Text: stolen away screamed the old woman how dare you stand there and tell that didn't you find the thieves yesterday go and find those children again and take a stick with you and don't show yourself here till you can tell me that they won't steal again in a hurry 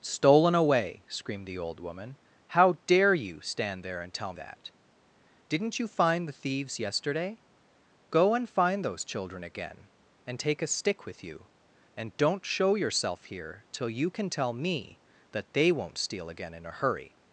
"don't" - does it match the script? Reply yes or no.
yes